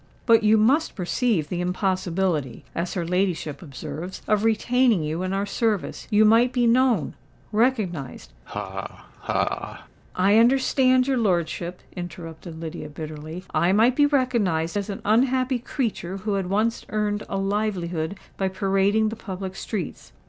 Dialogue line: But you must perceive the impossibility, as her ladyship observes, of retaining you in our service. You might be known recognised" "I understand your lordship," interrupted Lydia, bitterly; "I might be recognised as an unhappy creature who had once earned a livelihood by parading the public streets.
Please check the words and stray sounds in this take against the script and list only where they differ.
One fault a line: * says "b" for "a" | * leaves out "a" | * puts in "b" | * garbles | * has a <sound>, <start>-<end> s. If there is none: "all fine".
* has a laugh, 8.5-9.9 s